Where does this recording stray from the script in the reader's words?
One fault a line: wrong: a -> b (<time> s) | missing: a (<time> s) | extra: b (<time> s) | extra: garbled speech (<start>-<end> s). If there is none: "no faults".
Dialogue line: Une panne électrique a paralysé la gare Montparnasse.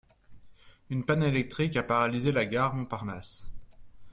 no faults